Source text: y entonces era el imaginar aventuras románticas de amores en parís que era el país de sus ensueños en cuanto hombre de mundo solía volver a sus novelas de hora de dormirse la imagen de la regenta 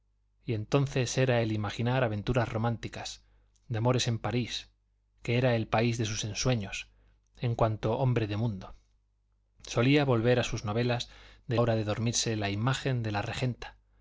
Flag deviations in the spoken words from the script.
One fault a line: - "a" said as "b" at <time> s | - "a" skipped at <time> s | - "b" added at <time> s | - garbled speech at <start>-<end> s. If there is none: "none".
none